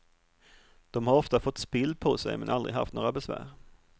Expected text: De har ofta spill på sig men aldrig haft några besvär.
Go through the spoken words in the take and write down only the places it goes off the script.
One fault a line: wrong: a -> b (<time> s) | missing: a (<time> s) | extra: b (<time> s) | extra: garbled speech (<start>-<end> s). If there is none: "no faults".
extra: fått (1.4 s)